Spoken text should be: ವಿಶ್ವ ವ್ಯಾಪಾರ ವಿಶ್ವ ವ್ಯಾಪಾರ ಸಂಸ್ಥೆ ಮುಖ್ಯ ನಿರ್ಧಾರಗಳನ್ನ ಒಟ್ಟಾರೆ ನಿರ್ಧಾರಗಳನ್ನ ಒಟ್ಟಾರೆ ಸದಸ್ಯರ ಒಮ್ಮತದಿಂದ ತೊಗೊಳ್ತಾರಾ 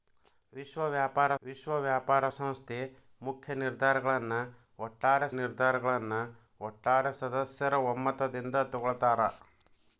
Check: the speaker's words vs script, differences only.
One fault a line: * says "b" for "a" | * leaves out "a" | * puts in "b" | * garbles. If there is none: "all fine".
all fine